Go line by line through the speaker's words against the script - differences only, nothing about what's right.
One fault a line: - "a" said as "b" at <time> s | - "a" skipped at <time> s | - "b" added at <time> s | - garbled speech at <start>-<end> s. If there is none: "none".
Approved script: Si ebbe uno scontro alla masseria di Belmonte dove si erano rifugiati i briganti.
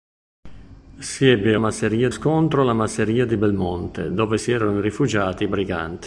- "uno" said as "masseria" at 1.6 s